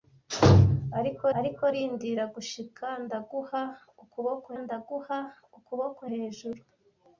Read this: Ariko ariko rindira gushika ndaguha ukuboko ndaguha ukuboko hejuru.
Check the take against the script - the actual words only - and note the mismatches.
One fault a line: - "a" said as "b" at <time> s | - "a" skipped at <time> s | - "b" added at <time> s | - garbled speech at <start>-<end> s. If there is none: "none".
none